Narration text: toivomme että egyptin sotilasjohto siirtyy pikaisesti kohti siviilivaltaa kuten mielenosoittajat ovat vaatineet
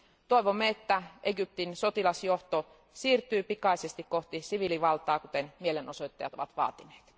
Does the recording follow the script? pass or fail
pass